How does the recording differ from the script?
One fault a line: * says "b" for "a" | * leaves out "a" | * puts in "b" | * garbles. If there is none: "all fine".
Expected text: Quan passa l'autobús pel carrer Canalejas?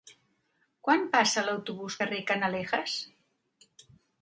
* leaves out "pel"